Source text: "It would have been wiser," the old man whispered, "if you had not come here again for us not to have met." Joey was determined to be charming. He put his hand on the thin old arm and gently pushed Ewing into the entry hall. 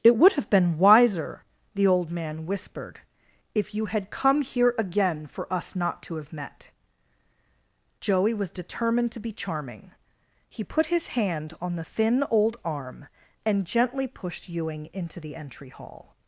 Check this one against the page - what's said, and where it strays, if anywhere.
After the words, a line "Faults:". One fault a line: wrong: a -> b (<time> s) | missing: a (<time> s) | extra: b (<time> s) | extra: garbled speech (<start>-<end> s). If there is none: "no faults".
"It would have been wiser," the old man whispered, "if you had come here again for us not to have met." Joey was determined to be charming. He put his hand on the thin old arm and gently pushed Ewing into the entry hall.
Faults:
missing: not (4.1 s)